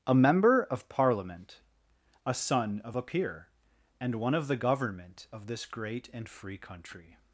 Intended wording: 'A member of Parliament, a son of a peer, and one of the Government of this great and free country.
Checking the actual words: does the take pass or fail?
pass